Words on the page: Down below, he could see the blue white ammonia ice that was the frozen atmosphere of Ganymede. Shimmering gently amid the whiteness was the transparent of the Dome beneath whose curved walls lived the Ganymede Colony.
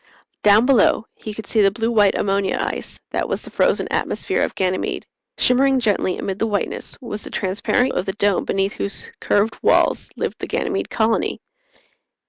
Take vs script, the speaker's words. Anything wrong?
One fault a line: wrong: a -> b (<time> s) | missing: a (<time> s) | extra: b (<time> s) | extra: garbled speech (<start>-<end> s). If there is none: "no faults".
no faults